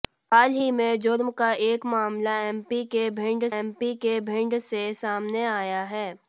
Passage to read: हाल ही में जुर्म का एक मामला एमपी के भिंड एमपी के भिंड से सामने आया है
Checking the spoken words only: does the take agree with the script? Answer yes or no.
yes